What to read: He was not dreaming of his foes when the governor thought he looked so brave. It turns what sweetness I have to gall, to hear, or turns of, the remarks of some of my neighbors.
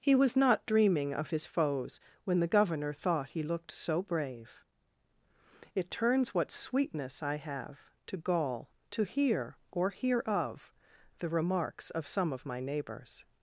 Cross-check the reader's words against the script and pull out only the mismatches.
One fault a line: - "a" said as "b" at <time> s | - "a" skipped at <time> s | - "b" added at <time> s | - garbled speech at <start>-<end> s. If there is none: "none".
- "turns" said as "hear" at 9.9 s